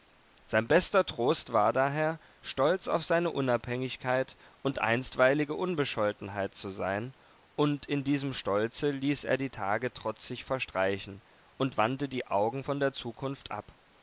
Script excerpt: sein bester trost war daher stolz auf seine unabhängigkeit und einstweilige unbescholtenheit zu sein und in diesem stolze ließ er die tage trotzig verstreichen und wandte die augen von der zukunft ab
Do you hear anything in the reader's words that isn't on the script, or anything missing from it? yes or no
no